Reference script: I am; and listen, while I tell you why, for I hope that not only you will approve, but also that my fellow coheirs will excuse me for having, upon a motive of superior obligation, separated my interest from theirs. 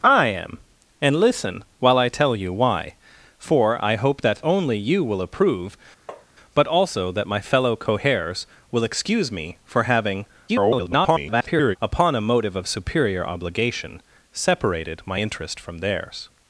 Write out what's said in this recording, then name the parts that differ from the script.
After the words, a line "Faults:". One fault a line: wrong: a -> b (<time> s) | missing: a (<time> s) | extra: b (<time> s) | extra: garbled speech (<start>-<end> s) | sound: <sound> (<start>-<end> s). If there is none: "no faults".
I am; and listen, while I tell you why, for I hope that only you will approve, but also that my fellow coheirs will excuse me for having, [garbled] upon a motive of superior obligation, separated my interest from theirs.
Faults:
missing: not (4.4 s)
sound: tap (6.1-6.3 s)
extra: garbled speech (10.5-11.8 s)